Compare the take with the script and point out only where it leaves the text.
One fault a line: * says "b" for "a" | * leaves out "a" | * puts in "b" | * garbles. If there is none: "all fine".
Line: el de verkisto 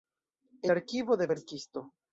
* puts in "arkivo"